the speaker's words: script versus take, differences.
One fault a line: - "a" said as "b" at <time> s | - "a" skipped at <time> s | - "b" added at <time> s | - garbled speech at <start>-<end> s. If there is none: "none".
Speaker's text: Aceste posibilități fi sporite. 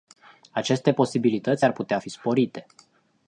- "ar putea" added at 1.6 s